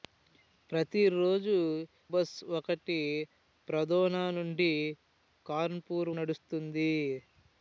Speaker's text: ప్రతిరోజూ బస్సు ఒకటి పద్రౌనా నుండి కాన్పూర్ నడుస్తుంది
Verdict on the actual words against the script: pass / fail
pass